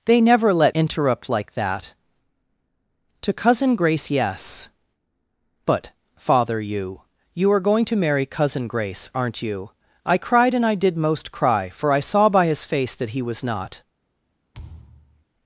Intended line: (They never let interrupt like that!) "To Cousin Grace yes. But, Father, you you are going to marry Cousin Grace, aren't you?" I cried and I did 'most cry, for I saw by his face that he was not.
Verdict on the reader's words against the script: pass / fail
pass